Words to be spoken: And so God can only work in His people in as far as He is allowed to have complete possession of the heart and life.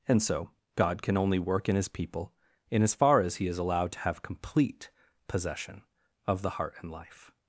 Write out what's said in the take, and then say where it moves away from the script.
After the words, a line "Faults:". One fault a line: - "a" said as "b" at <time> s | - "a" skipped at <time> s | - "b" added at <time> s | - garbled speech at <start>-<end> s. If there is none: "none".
And so God can only work in His people in as far as He is allowed to have complete possession of the heart and life.
Faults:
none